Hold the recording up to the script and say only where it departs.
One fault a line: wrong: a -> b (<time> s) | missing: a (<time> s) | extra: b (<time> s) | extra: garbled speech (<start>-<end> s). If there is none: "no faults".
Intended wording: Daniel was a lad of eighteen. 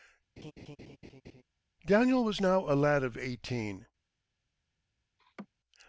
extra: now (2.4 s)